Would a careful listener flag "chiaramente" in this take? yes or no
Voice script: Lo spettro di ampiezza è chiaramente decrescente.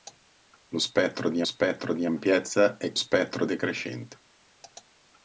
yes